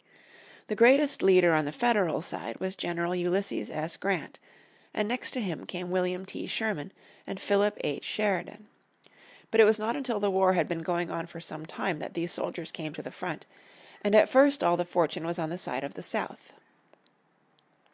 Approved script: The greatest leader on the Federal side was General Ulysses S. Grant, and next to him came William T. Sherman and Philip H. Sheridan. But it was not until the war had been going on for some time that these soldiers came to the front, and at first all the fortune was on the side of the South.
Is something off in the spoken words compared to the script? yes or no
no